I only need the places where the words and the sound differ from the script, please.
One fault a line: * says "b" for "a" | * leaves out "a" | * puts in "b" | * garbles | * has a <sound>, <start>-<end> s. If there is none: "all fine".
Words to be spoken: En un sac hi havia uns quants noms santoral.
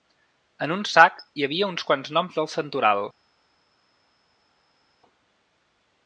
* puts in "del"